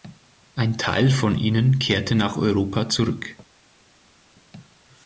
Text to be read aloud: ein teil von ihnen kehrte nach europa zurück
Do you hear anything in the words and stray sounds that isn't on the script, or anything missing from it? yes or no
no